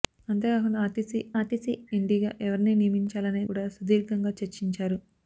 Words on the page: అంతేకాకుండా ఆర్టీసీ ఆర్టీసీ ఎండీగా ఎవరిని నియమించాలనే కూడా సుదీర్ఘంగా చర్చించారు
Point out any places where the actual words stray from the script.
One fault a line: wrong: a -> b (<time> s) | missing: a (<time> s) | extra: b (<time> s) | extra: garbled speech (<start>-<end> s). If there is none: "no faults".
no faults